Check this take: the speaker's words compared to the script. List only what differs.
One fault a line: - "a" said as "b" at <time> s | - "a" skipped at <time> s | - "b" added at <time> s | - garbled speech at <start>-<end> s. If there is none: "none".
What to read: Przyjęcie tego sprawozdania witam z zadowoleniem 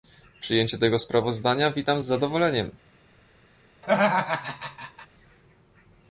none